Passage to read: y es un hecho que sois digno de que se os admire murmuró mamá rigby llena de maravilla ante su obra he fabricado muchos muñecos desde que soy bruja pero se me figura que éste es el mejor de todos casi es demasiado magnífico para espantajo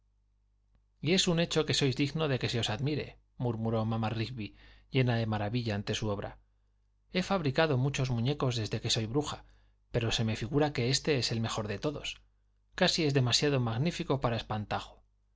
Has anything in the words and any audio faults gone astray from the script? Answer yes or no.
no